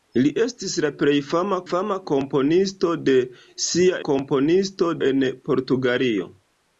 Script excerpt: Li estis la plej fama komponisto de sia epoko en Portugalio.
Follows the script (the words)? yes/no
no